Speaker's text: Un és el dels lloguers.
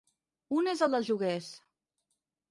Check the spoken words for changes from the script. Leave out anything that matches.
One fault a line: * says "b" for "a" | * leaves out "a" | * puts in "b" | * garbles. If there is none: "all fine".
all fine